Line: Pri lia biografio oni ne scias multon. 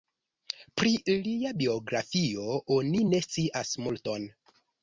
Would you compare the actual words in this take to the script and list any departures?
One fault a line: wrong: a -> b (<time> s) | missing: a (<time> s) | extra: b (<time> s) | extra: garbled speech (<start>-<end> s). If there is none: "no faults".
no faults